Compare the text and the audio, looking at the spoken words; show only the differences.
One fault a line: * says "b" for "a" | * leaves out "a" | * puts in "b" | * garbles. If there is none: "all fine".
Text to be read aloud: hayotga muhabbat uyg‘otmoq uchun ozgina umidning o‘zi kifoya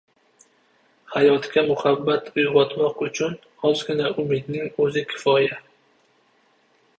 all fine